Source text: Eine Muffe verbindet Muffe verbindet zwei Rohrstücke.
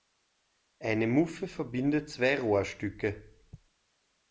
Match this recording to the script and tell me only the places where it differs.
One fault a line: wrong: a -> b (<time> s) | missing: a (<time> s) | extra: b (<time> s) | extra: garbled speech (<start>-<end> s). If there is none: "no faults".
missing: Muffe verbindet (2.1 s)